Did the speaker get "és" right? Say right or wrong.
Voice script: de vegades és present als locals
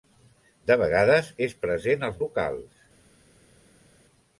right